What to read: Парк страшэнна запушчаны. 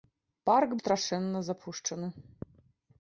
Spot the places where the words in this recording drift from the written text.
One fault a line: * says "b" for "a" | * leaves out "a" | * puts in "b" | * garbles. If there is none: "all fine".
all fine